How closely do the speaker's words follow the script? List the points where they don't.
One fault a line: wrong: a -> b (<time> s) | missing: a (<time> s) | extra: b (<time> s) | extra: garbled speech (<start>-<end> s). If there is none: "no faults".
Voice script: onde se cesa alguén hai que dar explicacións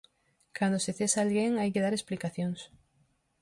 wrong: onde -> cando (0.6 s)